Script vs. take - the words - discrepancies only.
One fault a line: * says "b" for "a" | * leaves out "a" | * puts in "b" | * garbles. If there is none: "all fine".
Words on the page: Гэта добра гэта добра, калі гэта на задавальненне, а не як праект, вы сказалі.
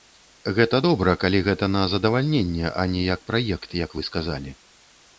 * leaves out "гэта добра"
* puts in "як"